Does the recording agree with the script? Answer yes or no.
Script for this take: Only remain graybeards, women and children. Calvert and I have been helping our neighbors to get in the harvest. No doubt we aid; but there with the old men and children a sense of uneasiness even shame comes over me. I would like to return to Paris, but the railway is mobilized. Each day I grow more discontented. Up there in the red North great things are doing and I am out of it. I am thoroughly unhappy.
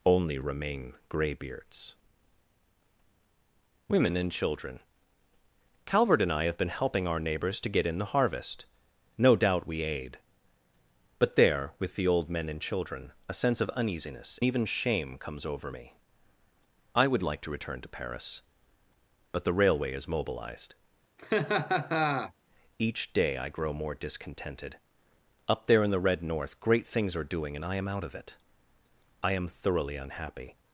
yes